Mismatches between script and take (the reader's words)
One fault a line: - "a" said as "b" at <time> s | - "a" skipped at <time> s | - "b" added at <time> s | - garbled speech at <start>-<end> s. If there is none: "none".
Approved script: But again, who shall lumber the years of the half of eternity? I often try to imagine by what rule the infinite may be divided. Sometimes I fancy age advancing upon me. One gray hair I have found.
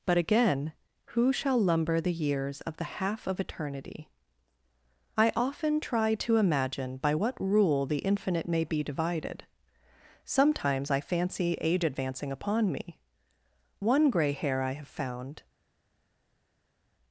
none